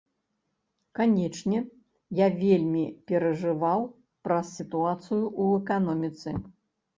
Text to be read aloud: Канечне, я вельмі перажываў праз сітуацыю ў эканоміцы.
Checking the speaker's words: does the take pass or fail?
pass